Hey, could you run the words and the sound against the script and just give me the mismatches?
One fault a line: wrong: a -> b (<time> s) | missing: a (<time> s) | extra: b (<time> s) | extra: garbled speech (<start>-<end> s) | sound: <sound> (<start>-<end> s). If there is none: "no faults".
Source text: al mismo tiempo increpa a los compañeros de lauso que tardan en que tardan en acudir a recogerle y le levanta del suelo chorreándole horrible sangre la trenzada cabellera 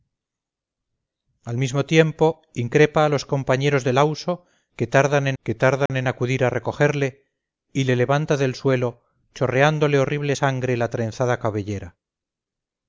sound: dropout (5.9-5.9 s)